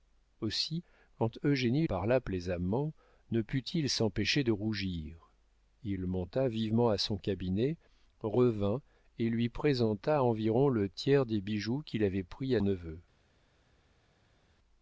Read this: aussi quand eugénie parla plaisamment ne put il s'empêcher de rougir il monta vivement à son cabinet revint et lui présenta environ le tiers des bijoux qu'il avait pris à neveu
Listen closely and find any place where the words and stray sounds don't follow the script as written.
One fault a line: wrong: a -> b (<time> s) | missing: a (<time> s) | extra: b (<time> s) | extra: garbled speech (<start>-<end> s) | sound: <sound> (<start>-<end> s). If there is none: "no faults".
no faults